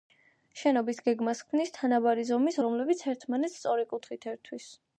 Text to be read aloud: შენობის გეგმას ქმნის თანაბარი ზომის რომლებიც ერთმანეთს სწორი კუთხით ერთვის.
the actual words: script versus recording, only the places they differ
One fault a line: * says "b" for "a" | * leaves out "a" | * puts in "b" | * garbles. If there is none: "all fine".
all fine